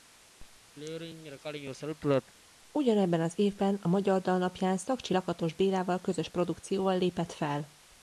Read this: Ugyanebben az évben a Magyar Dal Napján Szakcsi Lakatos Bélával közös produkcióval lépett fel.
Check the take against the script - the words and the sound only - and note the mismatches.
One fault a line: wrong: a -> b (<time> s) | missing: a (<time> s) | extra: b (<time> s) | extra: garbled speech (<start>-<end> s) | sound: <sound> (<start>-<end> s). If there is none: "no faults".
sound: throat clearing (0.8-2.3 s)